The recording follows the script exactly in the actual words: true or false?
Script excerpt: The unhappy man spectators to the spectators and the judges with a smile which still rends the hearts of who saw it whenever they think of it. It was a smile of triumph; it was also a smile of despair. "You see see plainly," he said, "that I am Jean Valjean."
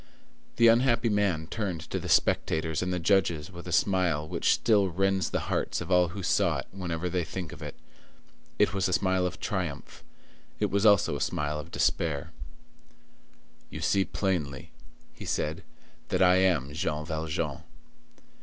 false